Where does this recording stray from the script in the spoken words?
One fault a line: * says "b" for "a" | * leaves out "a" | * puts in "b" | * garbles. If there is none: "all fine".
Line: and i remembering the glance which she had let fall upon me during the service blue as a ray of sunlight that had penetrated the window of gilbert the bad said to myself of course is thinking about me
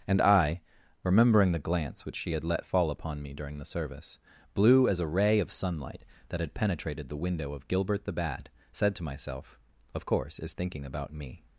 all fine